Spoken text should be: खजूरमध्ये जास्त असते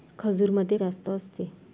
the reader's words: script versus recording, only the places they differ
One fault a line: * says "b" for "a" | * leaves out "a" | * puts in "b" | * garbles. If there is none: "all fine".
all fine